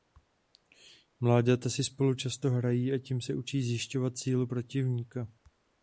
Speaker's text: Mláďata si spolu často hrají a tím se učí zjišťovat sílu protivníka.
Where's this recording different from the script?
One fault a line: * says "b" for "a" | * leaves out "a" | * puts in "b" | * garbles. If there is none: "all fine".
all fine